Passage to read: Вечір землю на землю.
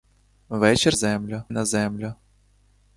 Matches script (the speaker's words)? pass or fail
pass